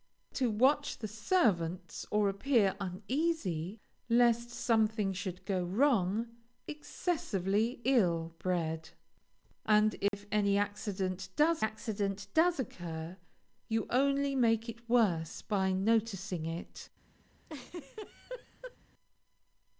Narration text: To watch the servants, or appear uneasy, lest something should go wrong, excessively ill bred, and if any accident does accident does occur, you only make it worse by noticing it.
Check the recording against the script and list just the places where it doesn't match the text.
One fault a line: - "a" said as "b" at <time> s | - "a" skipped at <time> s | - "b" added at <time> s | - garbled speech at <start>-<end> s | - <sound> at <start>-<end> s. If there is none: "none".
- dropout at 10.1-10.1 s
- laugh at 17.5-18.8 s